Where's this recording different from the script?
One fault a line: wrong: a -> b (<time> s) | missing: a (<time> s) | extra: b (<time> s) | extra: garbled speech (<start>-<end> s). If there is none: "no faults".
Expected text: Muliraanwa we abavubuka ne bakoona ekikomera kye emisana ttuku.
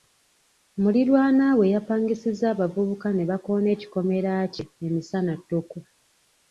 extra: yapangisizza (1.7 s)